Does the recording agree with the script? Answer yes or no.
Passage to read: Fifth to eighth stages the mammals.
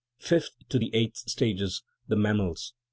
no